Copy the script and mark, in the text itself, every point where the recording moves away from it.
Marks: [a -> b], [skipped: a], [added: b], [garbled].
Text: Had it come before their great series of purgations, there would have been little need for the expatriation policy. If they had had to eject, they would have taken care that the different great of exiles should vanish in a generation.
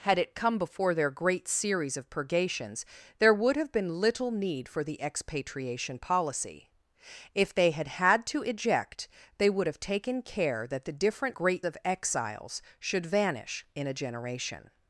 Had it come before their great series of purgations, there would have been little need for the expatriation policy. If they had had to eject, they would have taken care that the different great of exiles should vanish in a generation.